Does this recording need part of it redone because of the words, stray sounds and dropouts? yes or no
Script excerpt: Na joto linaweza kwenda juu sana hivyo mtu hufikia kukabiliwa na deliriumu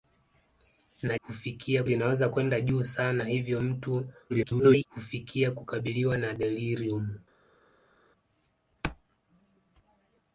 yes